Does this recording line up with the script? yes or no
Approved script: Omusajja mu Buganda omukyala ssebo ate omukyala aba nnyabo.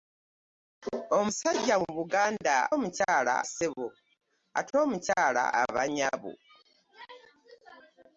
yes